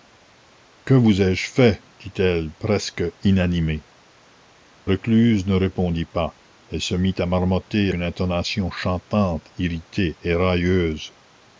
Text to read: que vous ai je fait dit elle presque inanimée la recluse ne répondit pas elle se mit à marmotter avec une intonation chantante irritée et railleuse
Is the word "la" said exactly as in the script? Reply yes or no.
no